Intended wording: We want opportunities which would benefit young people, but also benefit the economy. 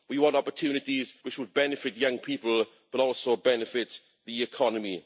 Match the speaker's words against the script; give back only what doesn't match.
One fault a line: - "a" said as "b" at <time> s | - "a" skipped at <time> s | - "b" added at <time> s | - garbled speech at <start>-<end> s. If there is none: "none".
none